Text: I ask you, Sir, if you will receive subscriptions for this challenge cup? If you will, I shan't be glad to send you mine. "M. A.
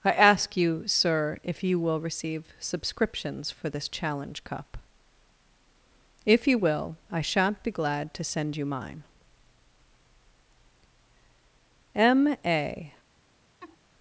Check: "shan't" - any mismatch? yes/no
no